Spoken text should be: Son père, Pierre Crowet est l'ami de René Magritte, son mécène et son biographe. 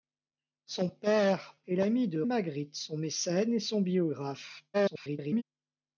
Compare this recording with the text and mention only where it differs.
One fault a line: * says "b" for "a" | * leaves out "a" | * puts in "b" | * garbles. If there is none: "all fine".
* leaves out "Pierre Crowet"
* leaves out "René"
* garbles